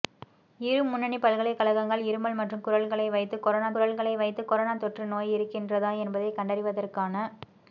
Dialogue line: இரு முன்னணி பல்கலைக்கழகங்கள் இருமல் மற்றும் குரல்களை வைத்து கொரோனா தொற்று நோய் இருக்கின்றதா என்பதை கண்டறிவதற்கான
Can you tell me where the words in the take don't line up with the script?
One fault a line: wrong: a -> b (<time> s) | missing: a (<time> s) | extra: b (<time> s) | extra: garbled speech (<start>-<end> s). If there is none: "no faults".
extra: குரல்களை வைத்து கொரோனா (3.7 s)